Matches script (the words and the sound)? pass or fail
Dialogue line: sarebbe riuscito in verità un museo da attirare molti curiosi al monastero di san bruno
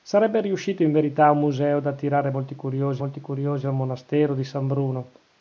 fail